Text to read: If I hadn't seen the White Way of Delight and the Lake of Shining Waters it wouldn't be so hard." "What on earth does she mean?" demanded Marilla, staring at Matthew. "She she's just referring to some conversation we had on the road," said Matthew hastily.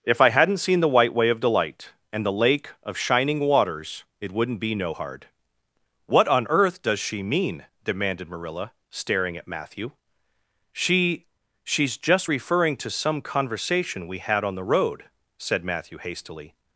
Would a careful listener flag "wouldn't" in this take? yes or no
no